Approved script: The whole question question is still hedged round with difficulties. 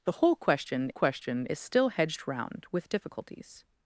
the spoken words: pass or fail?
pass